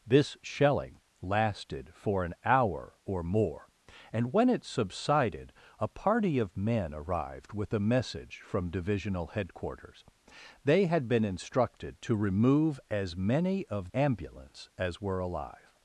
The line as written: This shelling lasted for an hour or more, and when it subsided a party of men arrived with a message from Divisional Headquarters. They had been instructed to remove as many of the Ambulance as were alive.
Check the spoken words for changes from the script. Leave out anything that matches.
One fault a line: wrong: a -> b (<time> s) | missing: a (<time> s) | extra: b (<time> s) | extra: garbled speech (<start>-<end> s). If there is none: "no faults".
missing: the (13.9 s)